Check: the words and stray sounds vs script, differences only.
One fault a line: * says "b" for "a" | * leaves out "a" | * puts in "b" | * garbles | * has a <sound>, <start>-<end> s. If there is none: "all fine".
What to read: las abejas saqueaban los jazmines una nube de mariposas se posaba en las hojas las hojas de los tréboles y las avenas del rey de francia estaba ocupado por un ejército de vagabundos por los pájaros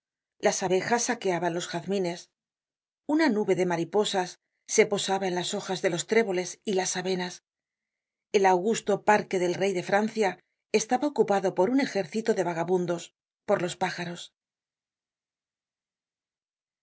* leaves out "las hojas"
* puts in "el augusto parque"